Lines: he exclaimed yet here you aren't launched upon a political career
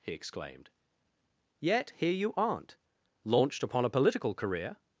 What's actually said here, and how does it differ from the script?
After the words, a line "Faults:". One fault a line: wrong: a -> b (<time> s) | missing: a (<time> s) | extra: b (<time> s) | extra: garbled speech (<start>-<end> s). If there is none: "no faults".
he exclaimed yet here you aren't launched upon a political career
Faults:
no faults